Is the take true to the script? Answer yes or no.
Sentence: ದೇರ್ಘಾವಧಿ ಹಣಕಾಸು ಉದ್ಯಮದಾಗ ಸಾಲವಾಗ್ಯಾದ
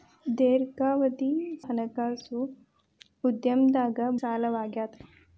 yes